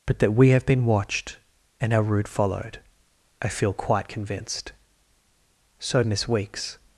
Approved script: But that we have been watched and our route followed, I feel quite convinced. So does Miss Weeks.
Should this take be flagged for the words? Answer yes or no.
yes